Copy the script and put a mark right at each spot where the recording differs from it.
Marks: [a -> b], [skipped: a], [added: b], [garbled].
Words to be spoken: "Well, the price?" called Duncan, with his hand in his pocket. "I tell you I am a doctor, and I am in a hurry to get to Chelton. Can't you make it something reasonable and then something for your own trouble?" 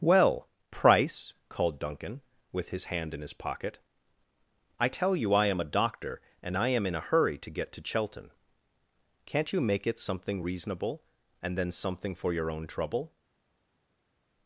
"Well, [skipped: the] price?" called Duncan, with his hand in his pocket. "I tell you I am a doctor, and I am in a hurry to get to Chelton. Can't you make it something reasonable and then something for your own trouble?"